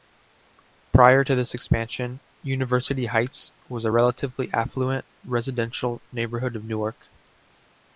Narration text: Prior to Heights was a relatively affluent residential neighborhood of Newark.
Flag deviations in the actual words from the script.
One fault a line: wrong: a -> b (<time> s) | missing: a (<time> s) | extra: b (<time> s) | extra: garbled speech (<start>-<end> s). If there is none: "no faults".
extra: this expansion University (1.3 s)